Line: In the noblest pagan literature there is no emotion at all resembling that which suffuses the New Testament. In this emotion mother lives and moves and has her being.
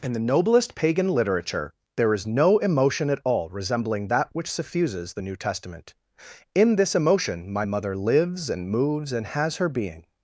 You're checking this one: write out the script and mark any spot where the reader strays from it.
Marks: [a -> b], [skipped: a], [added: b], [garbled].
In the noblest pagan literature there is no emotion at all resembling that which suffuses the New Testament. In this emotion [added: my] mother lives and moves and has her being.